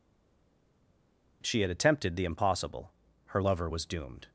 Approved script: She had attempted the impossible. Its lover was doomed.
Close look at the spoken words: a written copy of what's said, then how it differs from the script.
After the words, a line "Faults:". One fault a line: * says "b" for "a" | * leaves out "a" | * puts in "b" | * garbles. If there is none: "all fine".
She had attempted the impossible. Her lover was doomed.
Faults:
* says "Her" for "Its"